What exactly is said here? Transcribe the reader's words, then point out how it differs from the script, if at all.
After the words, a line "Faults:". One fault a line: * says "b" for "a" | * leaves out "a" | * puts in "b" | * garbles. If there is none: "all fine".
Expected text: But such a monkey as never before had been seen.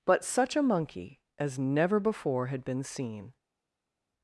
But such a monkey as never before had been seen.
Faults:
all fine